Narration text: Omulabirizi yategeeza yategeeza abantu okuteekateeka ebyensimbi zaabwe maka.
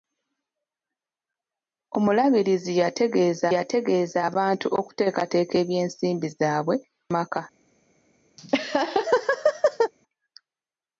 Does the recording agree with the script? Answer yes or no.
yes